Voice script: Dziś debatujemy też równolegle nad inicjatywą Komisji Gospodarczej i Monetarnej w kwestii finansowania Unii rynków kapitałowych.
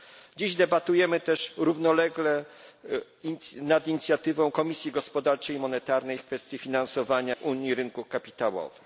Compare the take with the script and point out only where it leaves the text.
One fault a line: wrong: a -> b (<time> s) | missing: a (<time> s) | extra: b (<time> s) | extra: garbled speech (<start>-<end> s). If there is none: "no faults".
no faults